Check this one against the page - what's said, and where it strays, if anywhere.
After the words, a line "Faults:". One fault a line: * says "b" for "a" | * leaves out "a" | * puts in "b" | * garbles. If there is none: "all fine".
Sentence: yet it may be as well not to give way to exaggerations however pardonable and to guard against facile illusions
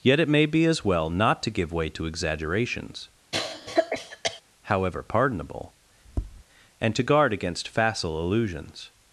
yet it may be as well not to give way to exaggerations however pardonable and to guard against facile illusions
Faults:
all fine